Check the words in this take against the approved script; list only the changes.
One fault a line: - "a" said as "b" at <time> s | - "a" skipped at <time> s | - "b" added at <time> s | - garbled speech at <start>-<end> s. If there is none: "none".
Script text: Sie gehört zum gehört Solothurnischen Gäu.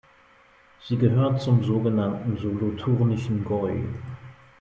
- "gehört" said as "sogenannten" at 1.6 s